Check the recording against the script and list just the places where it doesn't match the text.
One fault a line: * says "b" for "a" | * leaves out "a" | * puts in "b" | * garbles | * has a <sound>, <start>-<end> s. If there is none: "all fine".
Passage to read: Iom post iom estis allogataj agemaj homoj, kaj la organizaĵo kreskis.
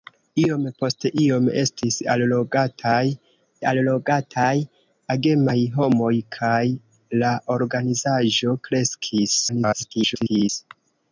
* puts in "allogataj"
* garbles